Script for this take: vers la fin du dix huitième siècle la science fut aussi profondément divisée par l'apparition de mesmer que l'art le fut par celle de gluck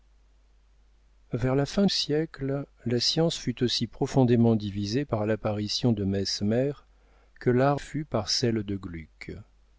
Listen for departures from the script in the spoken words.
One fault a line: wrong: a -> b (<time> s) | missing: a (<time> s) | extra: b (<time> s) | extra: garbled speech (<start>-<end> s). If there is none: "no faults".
missing: du dix huitième (1.9 s)
missing: le (7.8 s)